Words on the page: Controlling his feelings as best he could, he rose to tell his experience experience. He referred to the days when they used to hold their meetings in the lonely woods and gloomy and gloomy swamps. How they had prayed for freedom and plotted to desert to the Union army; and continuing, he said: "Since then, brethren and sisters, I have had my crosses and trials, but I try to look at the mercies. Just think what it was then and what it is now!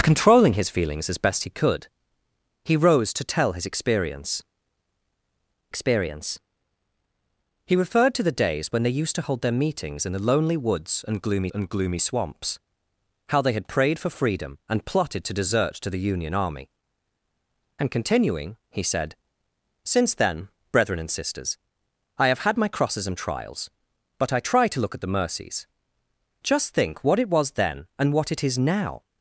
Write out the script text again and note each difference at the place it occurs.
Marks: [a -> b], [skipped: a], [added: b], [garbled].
Controlling his feelings as best he could, he rose to tell his experience experience. He referred to the days when they used to hold their meetings in the lonely woods and gloomy and gloomy swamps. How they had prayed for freedom and plotted to desert to the Union army; and continuing, he said: "Since then, brethren and sisters, I have had my crosses and trials, but I try to look at the mercies. Just think what it was then and what it is now!